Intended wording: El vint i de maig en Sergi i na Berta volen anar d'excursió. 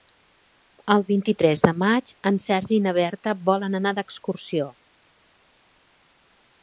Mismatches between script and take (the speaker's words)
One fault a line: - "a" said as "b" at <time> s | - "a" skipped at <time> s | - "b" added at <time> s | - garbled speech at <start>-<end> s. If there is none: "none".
- "tres" added at 1.4 s